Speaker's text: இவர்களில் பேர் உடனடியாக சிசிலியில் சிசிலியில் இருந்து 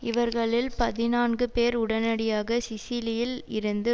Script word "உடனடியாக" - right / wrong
right